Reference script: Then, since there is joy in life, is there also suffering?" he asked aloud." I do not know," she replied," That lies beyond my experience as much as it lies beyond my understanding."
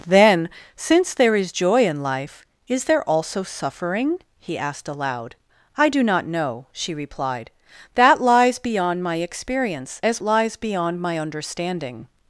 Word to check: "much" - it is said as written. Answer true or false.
false